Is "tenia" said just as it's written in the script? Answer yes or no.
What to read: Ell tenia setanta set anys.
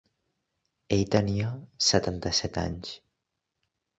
yes